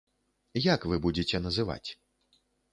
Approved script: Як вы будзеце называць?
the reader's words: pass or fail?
pass